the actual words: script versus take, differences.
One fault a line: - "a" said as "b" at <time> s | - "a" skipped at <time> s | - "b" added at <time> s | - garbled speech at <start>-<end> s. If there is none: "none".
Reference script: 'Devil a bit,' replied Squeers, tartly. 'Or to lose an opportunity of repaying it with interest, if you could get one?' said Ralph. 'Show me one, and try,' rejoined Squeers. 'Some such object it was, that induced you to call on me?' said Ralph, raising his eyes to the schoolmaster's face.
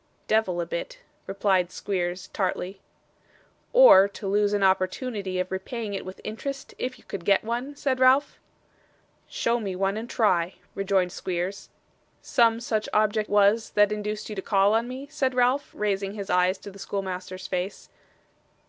- "it" skipped at 13.3 s